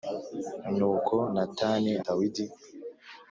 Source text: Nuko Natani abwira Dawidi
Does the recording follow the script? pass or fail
fail